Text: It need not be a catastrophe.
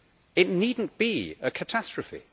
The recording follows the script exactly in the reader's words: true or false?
true